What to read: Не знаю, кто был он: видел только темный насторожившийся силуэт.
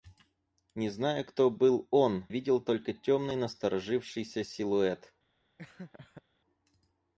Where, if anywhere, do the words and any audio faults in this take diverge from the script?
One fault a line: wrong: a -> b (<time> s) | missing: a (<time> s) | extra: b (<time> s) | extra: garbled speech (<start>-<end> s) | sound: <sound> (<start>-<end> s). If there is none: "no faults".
sound: laugh (5.6-6.2 s)